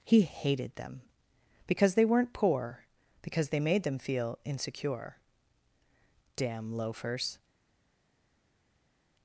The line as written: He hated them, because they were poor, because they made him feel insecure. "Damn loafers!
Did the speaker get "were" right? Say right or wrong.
wrong